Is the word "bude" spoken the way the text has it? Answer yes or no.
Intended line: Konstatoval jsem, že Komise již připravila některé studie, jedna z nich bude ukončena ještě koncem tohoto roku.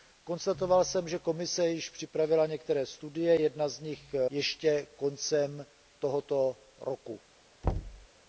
no